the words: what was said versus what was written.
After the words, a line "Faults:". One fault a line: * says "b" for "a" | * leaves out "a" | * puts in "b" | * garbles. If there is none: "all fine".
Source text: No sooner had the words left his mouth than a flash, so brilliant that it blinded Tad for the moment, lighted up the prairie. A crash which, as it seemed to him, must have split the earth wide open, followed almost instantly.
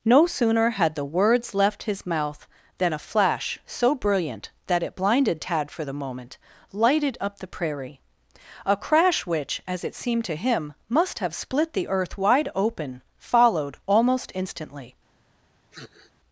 No sooner had the words left his mouth than a flash, so brilliant that it blinded Tad for the moment, lighted up the prairie. A crash which, as it seemed to him, must have split the earth wide open, followed almost instantly.
Faults:
all fine